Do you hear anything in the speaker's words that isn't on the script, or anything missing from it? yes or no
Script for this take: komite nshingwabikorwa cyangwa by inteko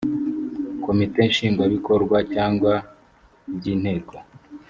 no